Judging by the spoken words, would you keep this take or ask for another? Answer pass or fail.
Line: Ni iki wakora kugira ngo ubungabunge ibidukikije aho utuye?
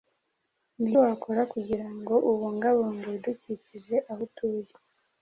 fail